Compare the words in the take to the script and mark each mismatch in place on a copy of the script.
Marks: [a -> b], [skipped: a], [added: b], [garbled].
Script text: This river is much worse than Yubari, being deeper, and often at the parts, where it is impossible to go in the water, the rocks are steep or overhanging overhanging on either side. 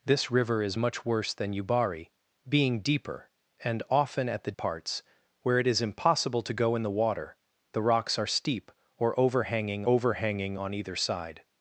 This river is much worse than Yubari, being deeper, and often at the parts, where it is impossible to go in the water, the rocks are steep or overhanging overhanging on either side.